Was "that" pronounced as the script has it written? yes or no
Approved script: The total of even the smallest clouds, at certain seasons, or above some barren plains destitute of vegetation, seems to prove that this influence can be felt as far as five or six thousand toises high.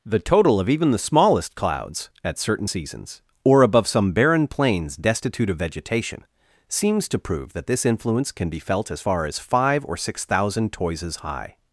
yes